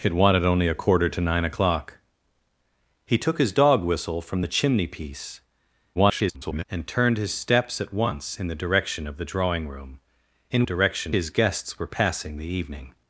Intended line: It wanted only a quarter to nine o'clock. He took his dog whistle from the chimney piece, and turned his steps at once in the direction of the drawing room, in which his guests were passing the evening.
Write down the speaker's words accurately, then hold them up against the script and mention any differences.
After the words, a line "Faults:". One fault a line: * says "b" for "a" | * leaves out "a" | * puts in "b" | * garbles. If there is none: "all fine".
It wanted only a quarter to nine o'clock. He took his dog whistle from the chimney piece, [garbled] and turned his steps at once in the direction of the drawing room, in direction his guests were passing the evening.
Faults:
* garbles
* says "direction" for "which"